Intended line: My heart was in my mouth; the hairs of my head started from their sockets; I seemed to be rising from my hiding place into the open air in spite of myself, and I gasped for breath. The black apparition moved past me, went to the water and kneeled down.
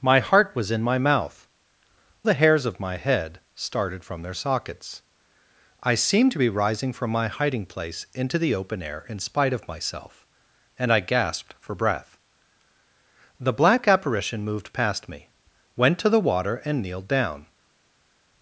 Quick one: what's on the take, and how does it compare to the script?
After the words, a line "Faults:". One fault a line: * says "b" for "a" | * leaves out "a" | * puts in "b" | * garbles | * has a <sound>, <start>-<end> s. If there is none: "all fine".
My heart was in my mouth; the hairs of my head started from their sockets; I seemed to be rising from my hiding place into the open air in spite of myself, and I gasped for breath. The black apparition moved past me, went to the water and kneeled down.
Faults:
all fine